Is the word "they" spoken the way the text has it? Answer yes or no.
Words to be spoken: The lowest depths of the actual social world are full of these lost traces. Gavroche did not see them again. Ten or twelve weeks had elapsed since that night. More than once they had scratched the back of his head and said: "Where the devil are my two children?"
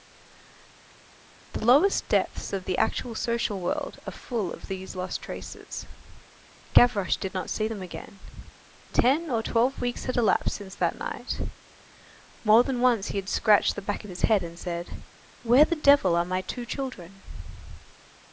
no